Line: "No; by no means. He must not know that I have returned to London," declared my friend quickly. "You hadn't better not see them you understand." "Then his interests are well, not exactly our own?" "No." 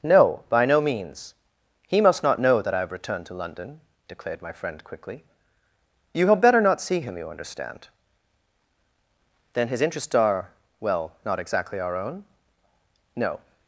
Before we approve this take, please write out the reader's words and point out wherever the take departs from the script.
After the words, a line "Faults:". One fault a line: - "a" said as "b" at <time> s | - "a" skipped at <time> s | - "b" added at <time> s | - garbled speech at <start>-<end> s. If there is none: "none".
"No; by no means. He must not know that I have returned to London," declared my friend quickly. "You had better not see him you understand." "Then his interests are well, not exactly our own?" "No."
Faults:
- "hadn't" said as "had" at 6.3 s
- "them" said as "him" at 7.0 s